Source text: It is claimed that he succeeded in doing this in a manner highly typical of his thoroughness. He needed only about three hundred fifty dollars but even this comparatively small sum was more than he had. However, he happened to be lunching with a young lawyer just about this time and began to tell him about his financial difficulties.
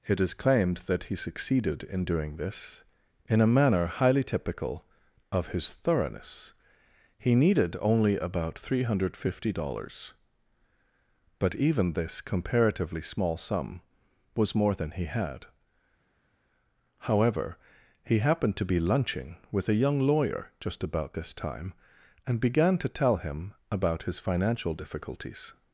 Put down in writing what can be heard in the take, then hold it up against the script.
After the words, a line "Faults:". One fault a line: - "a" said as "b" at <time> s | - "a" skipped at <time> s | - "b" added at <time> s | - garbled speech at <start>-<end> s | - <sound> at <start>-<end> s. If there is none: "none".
It is claimed that he succeeded in doing this in a manner highly typical of his thoroughness. He needed only about three hundred fifty dollars but even this comparatively small sum was more than he had. However, he happened to be lunching with a young lawyer just about this time and began to tell him about his financial difficulties.
Faults:
none